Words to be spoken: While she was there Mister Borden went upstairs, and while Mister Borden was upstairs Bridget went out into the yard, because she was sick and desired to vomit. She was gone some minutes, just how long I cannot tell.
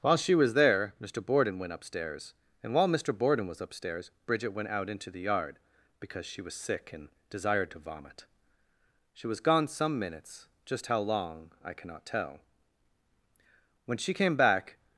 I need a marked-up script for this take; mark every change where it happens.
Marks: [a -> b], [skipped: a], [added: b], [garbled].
While she was there Mister Borden went upstairs, and while Mister Borden was upstairs Bridget went out into the yard, because she was sick and desired to vomit. She was gone some minutes, just how long I cannot tell. [added: When she came back]